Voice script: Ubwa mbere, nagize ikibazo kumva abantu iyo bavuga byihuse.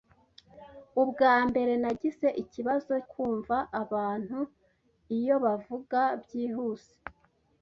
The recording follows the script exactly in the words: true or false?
true